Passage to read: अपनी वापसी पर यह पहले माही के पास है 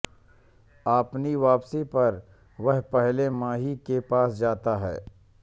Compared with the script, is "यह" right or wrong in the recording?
wrong